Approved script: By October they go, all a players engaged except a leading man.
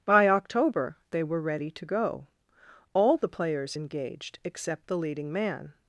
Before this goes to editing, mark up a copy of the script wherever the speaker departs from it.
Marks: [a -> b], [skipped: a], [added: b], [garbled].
By October they [added: were ready to] go, all [a -> the] players engaged except [a -> the] leading man.